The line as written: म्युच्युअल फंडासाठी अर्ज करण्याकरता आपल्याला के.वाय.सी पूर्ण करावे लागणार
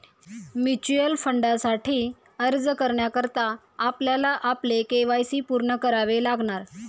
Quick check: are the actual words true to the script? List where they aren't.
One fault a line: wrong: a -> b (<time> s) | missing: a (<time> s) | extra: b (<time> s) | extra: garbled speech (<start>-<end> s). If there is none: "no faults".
extra: आपले (4.4 s)